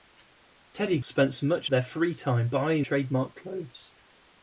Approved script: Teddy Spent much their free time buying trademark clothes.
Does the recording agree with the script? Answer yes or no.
yes